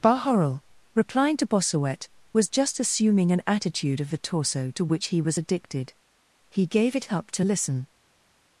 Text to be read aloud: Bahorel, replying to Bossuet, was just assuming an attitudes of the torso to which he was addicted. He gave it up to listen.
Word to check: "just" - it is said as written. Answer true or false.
true